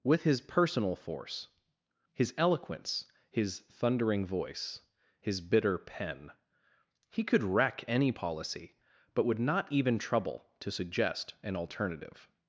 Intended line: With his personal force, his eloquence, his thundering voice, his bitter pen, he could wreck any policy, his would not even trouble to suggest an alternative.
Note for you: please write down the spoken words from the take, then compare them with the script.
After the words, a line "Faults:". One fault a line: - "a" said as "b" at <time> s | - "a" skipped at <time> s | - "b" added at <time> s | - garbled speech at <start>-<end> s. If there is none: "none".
With his personal force, his eloquence, his thundering voice, his bitter pen, he could wreck any policy, but would not even trouble to suggest an alternative.
Faults:
- "his" said as "but" at 9.1 s